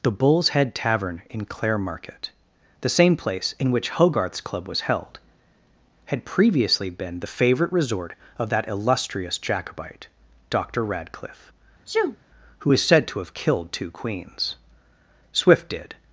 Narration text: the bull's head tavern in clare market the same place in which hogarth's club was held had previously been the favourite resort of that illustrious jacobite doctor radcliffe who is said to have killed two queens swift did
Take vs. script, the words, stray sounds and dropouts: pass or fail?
fail